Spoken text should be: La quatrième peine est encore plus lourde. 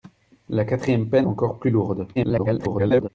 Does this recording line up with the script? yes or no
no